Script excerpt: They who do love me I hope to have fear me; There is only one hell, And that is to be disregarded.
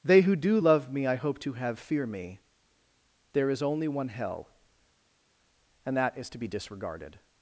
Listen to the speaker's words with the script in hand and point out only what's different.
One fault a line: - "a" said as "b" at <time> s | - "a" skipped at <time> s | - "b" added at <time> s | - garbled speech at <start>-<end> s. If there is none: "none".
none